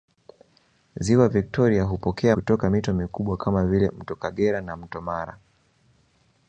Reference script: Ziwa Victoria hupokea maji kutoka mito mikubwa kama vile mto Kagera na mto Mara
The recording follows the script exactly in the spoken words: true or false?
false